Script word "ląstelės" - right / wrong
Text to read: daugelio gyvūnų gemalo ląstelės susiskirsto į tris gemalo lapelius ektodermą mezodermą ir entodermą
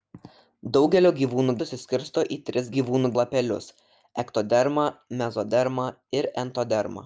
wrong